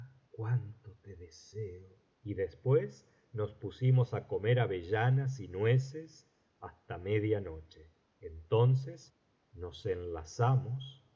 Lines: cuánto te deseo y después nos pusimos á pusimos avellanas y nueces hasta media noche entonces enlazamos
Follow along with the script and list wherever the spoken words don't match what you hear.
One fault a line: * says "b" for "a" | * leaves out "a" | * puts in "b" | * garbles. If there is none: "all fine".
* says "comer" for "pusimos"
* puts in "nos"